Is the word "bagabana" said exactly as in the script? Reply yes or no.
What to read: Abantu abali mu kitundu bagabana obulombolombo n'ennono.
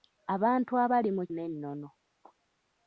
no